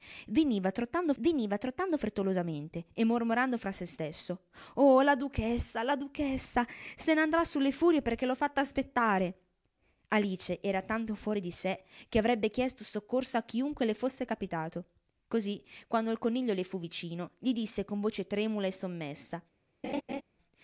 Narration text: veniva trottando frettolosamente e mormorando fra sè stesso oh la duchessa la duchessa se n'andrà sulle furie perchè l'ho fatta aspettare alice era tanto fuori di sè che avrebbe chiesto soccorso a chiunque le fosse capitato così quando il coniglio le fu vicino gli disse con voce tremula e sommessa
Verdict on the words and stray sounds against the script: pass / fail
fail